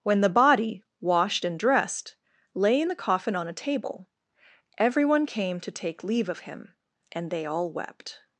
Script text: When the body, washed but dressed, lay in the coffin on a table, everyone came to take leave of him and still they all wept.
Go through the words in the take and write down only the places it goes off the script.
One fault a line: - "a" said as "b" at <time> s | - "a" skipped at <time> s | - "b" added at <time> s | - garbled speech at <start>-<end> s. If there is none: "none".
- "but" said as "and" at 1.4 s
- "still" skipped at 7.3 s